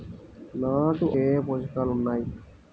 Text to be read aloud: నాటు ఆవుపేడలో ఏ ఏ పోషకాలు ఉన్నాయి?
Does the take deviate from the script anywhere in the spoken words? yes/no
yes